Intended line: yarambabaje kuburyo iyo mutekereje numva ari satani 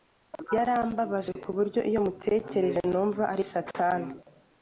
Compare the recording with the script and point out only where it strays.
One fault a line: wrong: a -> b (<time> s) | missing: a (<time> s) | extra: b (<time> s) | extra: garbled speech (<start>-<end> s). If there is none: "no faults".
no faults